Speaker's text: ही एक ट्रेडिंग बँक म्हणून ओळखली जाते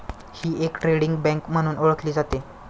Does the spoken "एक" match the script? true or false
true